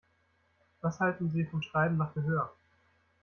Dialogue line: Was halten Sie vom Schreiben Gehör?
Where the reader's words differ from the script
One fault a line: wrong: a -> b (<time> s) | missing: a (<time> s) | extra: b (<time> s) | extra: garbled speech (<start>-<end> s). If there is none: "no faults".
extra: nach (2.0 s)